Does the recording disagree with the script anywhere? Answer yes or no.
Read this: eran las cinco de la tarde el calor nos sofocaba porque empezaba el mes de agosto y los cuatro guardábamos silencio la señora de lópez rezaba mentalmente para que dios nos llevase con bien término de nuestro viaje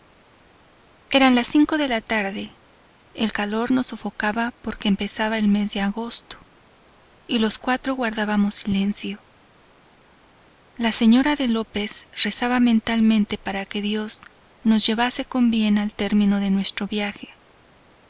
yes